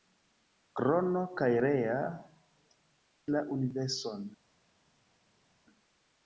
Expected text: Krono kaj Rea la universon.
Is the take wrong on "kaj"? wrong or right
right